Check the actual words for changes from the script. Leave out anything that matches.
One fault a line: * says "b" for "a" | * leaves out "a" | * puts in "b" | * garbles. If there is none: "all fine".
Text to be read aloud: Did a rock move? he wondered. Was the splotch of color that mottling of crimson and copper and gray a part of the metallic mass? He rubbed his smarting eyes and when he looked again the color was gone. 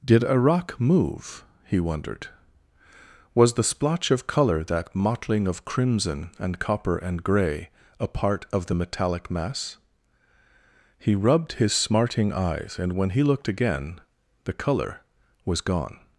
all fine